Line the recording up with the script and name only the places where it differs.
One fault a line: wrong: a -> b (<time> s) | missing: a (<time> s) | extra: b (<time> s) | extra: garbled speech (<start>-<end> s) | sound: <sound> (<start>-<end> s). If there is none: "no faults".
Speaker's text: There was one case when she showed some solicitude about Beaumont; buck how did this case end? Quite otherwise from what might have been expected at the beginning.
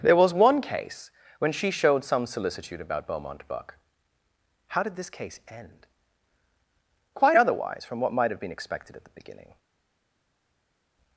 no faults